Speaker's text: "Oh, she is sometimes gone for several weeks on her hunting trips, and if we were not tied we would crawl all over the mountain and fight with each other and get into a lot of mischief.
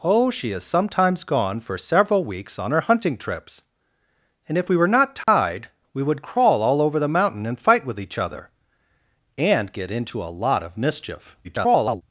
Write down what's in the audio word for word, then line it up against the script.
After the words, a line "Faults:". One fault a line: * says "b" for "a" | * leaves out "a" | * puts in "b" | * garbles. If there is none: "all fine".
"Oh, she is sometimes gone for several weeks on her hunting trips, and if we were not tied we would crawl all over the mountain and fight with each other and get into a lot of mischief. [garbled]
Faults:
* garbles